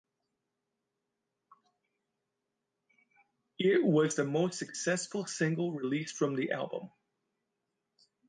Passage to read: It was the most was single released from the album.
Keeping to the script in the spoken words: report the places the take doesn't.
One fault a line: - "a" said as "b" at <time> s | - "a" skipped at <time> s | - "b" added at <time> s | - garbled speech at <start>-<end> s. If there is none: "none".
- "was" said as "successful" at 4.6 s